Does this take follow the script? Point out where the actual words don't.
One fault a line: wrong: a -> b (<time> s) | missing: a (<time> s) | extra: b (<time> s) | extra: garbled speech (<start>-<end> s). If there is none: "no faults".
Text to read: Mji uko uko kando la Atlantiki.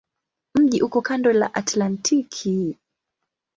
missing: uko (1.0 s)